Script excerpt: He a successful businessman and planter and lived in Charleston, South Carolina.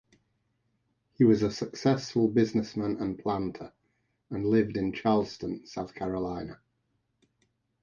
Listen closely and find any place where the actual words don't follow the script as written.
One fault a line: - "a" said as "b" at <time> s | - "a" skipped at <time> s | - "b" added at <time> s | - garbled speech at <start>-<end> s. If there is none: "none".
- "was" added at 1.2 s